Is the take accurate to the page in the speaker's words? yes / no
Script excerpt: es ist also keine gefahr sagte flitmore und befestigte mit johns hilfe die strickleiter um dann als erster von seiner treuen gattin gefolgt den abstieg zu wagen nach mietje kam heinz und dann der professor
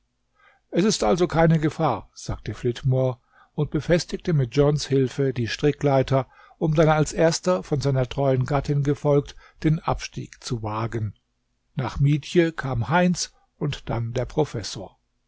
yes